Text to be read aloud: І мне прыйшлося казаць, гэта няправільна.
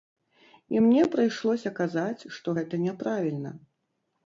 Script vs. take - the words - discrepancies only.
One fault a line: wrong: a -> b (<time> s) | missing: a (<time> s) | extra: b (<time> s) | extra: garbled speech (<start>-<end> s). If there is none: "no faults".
extra: што (2.4 s)